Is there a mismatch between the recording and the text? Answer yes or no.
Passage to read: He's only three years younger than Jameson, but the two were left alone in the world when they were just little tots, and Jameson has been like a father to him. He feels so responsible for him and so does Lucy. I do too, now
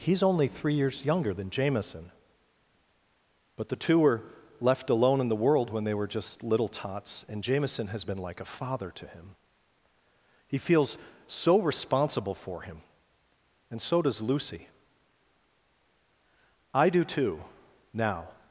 no